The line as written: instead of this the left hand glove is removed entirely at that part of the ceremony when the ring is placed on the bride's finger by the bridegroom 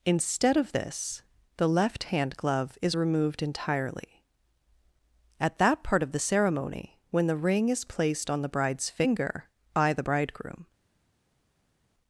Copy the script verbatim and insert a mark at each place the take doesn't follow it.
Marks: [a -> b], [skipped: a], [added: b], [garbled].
instead of this the left hand glove is removed entirely at that part of the ceremony when the ring is placed on the bride's finger by the bridegroom